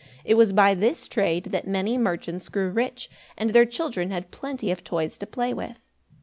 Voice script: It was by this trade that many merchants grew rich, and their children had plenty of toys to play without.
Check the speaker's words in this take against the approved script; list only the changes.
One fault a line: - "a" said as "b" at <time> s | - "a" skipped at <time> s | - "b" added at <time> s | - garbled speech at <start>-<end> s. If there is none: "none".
- "without" said as "with" at 5.5 s